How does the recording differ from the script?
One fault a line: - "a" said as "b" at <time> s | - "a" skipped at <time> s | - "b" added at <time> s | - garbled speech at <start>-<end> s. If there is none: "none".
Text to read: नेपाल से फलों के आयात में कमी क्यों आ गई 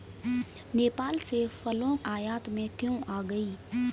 - "के" skipped at 1.9 s
- "कमी" skipped at 2.7 s